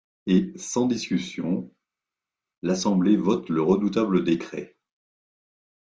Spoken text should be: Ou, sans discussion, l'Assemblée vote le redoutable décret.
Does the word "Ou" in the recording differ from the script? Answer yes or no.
yes